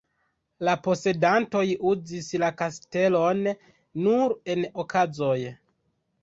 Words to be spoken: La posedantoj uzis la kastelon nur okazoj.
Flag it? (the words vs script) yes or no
yes